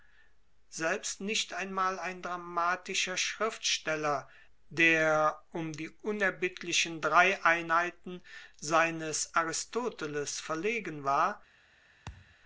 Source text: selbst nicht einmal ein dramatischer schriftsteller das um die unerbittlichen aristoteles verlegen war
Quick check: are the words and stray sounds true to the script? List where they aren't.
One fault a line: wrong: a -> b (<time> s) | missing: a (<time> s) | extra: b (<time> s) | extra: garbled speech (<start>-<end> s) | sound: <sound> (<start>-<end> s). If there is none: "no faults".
wrong: das -> der (4.7 s)
extra: drei einheiten seines (7.0 s)
sound: thud (12.1-12.4 s)